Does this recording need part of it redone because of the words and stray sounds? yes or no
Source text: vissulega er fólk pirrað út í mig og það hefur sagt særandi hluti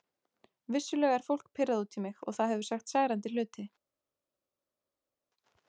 no